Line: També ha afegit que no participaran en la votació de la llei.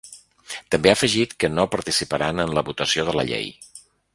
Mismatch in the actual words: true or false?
false